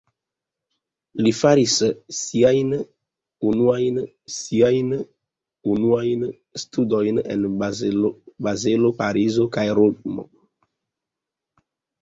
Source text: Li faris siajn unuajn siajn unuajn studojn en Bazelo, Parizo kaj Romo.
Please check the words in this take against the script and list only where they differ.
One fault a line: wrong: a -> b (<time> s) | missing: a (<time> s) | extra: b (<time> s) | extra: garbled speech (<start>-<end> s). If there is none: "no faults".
no faults